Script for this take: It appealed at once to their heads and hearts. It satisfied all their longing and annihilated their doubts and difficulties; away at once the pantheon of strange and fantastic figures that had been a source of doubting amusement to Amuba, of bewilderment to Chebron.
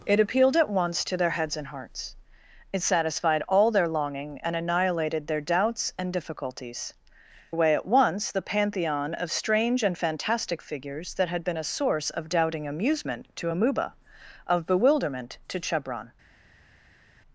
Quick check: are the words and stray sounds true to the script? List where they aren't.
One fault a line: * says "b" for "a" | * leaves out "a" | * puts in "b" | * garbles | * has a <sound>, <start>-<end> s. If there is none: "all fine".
all fine